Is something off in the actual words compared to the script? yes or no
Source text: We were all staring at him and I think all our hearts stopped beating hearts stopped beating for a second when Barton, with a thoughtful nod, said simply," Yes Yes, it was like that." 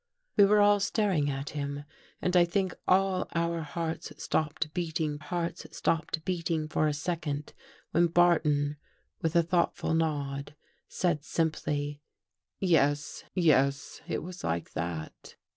no